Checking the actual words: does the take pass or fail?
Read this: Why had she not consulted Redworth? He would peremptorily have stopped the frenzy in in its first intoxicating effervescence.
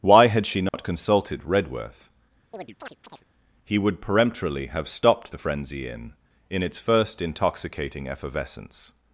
pass